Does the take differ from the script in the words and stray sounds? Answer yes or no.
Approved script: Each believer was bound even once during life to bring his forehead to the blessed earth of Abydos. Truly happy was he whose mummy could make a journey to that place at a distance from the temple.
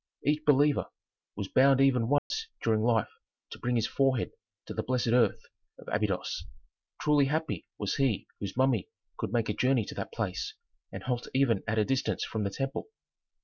yes